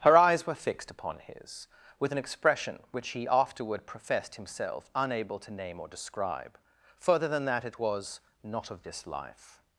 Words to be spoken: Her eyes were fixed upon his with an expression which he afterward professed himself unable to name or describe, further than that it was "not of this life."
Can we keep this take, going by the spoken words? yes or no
yes